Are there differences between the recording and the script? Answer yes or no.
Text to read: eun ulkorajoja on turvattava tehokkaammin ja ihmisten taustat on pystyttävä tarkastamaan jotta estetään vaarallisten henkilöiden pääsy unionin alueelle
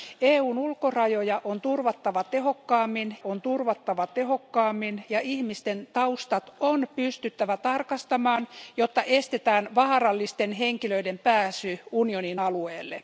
yes